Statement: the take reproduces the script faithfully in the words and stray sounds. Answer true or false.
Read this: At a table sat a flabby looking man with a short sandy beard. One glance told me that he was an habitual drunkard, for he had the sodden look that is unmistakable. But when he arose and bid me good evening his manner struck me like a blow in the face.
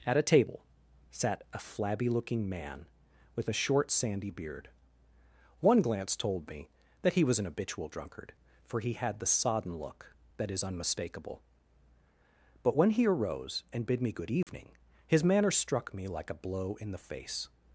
false